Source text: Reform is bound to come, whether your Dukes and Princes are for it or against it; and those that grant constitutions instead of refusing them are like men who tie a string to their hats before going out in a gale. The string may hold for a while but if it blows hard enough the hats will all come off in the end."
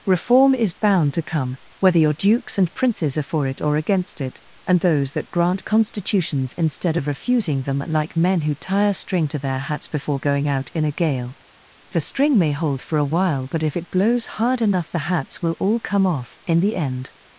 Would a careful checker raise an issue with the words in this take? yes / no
yes